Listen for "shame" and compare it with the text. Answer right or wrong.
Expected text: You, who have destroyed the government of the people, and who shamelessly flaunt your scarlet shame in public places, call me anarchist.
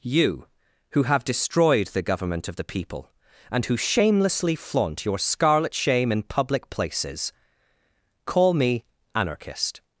right